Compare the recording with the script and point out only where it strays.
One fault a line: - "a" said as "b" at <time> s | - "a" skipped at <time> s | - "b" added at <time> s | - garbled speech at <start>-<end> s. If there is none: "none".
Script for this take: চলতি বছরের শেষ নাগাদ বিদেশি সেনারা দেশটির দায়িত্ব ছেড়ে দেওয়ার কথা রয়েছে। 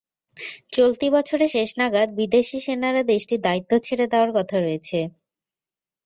none